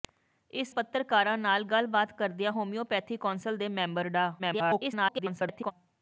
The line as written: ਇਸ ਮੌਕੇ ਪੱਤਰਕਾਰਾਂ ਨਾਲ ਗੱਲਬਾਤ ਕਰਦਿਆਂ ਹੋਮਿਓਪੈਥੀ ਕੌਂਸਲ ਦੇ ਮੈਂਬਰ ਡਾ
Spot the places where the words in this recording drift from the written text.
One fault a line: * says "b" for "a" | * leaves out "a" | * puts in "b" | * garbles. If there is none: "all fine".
* leaves out "ਮੌਕੇ"
* garbles